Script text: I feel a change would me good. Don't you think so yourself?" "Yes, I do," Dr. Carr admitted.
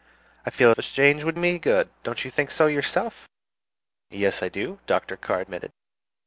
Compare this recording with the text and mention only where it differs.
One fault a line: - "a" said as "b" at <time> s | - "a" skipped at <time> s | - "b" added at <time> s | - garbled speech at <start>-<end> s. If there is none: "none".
none